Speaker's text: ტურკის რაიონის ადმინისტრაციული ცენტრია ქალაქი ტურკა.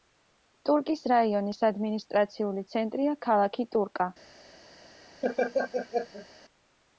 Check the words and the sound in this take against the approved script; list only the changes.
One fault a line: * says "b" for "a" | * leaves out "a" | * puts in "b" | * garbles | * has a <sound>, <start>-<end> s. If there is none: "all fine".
* has a laugh, 5.2-6.3 s